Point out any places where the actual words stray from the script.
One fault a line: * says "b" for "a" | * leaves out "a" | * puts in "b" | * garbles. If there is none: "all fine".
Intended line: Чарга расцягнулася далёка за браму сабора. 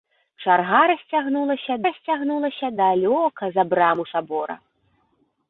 * puts in "расцягнулася"